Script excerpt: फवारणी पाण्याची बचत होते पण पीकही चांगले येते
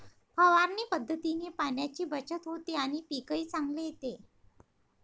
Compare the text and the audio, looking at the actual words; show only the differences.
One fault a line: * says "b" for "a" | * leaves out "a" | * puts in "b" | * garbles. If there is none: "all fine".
* puts in "पद्धतीने"
* says "आणि" for "पण"